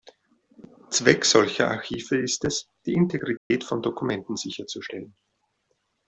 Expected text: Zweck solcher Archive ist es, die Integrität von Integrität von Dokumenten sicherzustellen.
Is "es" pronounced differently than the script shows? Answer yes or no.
no